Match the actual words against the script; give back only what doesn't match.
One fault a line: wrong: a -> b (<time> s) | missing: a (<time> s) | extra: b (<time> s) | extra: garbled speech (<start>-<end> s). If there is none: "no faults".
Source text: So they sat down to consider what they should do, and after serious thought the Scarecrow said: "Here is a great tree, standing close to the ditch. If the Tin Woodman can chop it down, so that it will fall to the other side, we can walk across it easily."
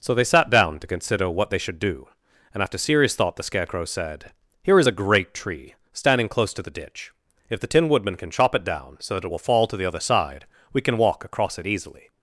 no faults